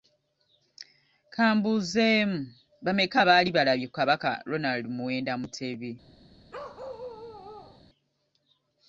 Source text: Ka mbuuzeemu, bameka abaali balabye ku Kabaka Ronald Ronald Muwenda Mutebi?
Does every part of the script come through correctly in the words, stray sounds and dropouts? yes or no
no